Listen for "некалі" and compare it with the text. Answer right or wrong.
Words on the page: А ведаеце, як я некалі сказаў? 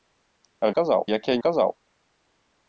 wrong